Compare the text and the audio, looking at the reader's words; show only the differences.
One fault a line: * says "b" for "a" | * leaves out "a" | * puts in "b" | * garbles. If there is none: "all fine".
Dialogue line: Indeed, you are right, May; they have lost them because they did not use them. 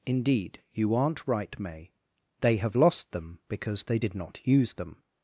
* says "aren't" for "are"